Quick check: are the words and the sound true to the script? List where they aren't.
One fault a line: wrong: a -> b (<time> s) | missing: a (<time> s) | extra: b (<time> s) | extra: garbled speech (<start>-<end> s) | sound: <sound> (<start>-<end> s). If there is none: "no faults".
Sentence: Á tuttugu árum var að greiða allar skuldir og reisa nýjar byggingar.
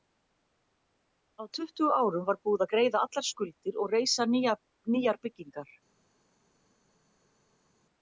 extra: búið (2.5 s)